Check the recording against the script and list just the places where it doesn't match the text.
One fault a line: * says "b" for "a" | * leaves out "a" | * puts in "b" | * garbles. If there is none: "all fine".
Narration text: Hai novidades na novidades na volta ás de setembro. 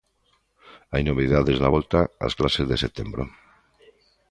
* leaves out "novidades na"
* puts in "clases"